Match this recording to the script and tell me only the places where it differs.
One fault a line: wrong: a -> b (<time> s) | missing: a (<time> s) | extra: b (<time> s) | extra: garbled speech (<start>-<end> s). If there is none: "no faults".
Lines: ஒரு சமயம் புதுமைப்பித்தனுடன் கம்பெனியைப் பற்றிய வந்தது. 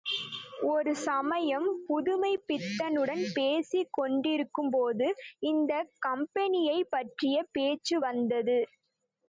extra: பேசிக் கொண்டிருக்கும்போது இந்தக் (3.3 s)
extra: பேச்சு (7.5 s)